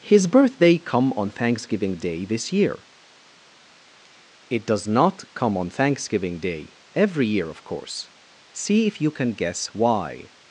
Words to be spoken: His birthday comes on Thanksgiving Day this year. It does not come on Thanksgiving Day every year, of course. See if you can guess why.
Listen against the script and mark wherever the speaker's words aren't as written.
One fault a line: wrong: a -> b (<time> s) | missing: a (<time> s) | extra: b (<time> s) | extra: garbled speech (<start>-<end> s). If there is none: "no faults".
wrong: comes -> come (0.8 s)